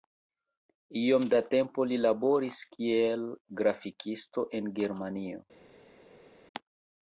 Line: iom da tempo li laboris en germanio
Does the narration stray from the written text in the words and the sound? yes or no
yes